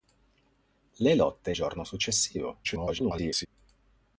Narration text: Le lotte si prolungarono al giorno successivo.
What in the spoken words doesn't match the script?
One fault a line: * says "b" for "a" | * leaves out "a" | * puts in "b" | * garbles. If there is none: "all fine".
* leaves out "si prolungarono al"
* garbles